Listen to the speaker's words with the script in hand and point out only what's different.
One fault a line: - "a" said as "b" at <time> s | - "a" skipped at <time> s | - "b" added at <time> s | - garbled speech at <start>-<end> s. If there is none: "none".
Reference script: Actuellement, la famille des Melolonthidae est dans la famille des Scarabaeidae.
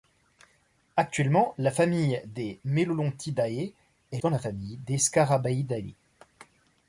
none